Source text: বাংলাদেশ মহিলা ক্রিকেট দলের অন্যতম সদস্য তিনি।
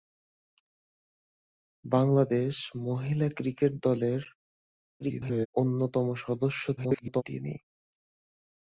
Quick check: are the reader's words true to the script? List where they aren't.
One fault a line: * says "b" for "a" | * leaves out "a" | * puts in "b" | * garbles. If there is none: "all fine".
* garbles
* garbles